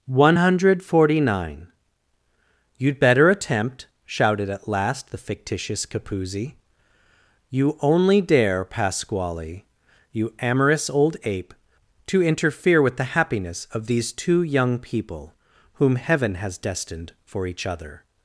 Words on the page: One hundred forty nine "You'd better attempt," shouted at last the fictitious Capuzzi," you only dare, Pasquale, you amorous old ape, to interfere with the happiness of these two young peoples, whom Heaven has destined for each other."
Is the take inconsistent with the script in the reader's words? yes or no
yes